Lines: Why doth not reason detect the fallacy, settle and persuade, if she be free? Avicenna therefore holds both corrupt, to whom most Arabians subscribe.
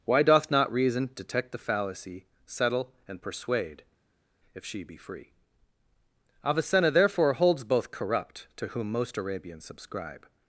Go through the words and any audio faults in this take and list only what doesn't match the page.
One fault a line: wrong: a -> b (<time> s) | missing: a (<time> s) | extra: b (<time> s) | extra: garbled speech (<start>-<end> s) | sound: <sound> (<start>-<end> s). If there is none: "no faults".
no faults